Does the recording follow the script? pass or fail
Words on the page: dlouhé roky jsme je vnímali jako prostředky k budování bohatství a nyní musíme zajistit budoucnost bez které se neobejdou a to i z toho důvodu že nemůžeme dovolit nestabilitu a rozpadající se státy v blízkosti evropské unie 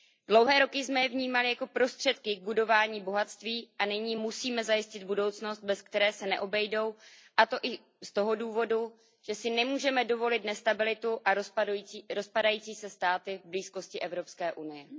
fail